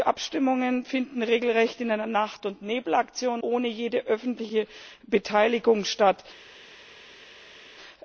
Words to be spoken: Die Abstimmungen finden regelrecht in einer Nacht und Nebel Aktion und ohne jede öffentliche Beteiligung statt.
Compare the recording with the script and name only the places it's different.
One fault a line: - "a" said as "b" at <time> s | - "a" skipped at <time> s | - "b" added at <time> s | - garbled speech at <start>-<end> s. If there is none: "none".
- "und" skipped at 3.4 s